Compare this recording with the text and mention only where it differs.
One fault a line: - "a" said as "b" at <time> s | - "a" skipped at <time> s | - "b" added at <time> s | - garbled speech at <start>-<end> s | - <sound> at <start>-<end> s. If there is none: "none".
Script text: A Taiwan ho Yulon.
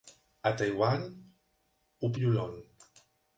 none